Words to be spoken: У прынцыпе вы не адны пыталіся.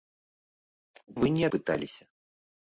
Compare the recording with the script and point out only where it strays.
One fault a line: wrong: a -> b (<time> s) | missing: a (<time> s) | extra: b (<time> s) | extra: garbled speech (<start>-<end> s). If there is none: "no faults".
missing: прынцыпе (1.1 s)
missing: адны (1.4 s)